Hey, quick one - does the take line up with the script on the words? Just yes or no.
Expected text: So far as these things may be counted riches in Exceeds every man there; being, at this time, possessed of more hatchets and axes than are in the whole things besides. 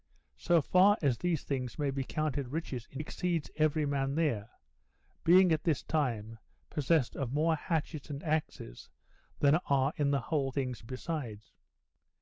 yes